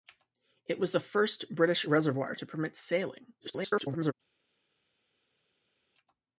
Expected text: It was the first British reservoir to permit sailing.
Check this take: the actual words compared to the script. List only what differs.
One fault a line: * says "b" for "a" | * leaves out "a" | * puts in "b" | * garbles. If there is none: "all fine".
* garbles